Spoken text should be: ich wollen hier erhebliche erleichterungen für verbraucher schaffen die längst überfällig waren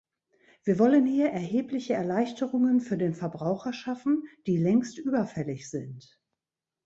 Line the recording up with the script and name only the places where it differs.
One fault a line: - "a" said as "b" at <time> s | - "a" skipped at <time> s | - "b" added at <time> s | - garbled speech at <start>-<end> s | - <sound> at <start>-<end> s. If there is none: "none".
- "ich" said as "wir" at 0.6 s
- "den" added at 3.0 s
- "waren" said as "sind" at 5.7 s